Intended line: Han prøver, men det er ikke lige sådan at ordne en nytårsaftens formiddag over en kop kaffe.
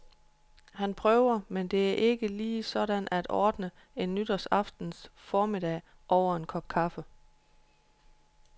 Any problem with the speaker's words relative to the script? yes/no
no